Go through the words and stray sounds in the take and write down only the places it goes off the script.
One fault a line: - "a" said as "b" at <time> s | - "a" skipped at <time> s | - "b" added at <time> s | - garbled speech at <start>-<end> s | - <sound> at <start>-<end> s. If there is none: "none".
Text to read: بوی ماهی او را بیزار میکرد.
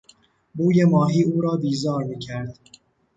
none